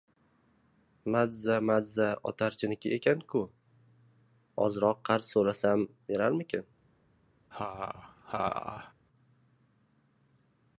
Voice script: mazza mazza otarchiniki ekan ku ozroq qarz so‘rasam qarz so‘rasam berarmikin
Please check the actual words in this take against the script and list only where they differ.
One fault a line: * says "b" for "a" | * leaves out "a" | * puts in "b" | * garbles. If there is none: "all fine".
* leaves out "qarz so‘rasam"